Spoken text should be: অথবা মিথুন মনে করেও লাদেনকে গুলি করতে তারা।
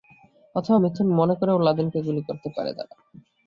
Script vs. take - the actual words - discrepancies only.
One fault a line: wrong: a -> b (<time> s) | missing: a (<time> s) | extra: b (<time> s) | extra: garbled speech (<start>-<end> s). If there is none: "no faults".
extra: পারে (2.5 s)